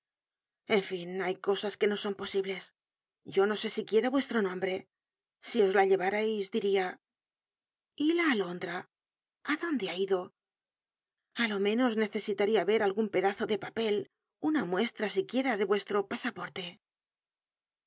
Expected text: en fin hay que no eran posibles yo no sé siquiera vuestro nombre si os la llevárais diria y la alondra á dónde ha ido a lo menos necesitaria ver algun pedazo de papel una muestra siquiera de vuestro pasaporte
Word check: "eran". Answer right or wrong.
wrong